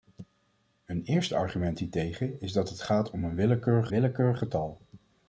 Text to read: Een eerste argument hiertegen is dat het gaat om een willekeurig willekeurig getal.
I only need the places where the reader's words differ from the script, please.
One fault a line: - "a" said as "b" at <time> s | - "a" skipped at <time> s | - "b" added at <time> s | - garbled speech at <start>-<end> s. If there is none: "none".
none